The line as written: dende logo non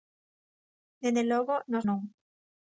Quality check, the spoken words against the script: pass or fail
fail